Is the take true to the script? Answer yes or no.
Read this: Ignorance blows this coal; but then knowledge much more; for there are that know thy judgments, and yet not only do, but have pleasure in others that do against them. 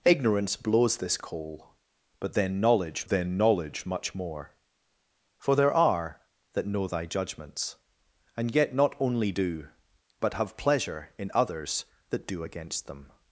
no